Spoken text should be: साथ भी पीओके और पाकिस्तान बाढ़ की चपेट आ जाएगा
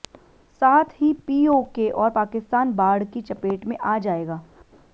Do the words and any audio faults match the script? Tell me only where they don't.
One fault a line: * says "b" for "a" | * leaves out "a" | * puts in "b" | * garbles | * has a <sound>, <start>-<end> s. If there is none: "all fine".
* says "ही" for "भी"
* puts in "में"